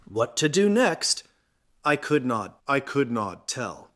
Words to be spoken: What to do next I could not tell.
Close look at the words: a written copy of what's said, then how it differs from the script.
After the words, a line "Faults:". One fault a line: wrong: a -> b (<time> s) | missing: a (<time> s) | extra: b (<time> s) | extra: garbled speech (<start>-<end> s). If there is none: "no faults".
What to do next I could not I could not tell.
Faults:
extra: I could not (2.7 s)